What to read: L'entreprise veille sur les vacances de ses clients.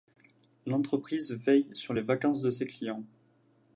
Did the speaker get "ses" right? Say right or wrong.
right